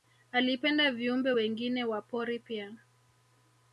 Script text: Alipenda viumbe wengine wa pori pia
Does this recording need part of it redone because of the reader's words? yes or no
no